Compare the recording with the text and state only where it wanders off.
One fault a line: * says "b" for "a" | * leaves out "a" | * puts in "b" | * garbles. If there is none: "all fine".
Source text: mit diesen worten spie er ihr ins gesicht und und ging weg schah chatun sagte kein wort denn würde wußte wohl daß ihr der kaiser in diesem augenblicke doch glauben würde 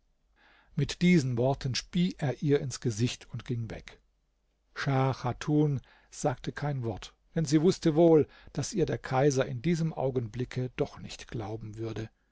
* leaves out "und"
* says "sie" for "würde"
* puts in "nicht"